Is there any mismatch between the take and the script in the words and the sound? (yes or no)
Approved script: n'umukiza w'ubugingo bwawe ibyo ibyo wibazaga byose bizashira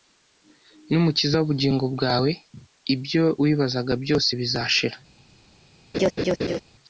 yes